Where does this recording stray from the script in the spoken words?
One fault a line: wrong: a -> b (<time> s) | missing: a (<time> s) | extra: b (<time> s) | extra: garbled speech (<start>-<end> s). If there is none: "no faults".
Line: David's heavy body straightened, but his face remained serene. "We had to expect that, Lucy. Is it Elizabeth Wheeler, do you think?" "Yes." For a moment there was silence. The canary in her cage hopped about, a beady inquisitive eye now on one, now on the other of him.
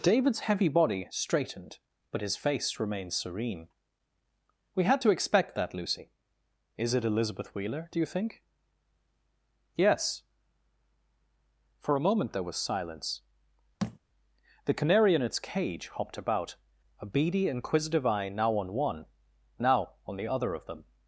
wrong: her -> its (15.2 s)
wrong: him -> them (20.7 s)